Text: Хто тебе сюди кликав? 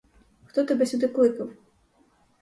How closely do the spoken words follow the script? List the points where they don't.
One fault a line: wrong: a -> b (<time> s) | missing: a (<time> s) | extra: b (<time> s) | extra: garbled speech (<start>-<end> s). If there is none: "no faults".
no faults